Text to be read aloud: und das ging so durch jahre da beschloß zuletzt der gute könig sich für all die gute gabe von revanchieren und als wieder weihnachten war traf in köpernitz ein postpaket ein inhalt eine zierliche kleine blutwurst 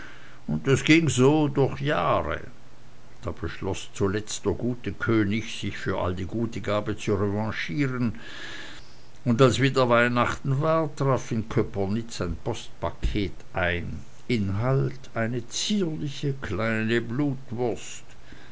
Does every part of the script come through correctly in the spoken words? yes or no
no